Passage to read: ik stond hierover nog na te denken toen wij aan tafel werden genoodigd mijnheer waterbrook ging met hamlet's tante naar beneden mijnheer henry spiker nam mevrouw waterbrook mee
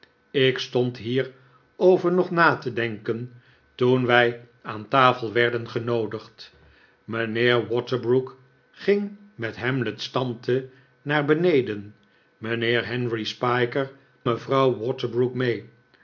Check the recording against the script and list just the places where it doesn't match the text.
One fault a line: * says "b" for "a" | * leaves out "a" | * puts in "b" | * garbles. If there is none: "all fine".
* leaves out "nam"